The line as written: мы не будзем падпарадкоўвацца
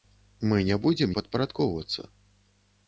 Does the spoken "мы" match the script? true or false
true